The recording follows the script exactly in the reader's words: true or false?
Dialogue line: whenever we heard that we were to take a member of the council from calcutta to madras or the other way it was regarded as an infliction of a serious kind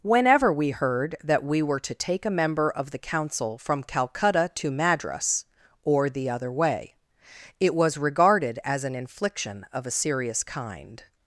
true